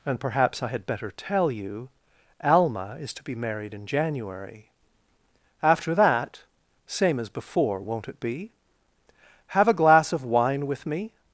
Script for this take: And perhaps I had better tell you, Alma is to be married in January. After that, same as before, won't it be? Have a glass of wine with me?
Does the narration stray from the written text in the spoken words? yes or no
no